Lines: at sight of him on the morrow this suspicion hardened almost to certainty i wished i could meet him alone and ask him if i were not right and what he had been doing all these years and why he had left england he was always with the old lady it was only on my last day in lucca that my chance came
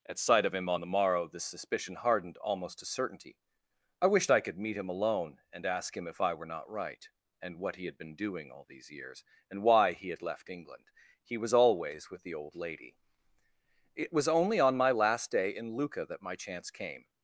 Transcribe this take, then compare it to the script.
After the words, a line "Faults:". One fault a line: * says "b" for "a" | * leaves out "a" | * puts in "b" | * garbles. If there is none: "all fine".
at sight of him on the morrow this suspicion hardened almost to certainty i wished i could meet him alone and ask him if i were not right and what he had been doing all these years and why he had left england he was always with the old lady it was only on my last day in lucca that my chance came
Faults:
all fine